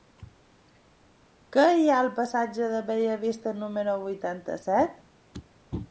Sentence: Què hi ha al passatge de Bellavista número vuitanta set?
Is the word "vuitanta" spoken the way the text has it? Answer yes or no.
yes